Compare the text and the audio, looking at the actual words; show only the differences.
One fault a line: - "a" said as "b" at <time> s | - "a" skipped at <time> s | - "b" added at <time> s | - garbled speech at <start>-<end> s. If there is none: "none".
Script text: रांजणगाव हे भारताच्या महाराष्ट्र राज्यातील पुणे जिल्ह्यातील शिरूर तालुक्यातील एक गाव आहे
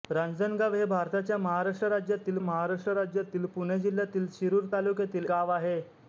- "महाराष्ट्र राज्यातील" added at 2.4 s
- "एक" skipped at 5.3 s